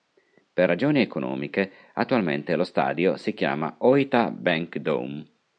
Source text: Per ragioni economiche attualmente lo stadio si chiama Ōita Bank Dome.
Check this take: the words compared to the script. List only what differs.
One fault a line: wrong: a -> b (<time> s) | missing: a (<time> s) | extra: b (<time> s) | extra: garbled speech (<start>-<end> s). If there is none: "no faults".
no faults